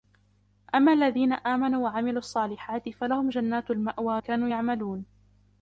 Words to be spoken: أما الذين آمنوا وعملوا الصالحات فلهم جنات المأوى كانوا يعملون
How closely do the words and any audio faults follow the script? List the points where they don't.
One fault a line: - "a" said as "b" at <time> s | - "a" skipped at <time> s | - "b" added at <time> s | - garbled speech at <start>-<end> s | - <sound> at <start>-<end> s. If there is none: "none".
none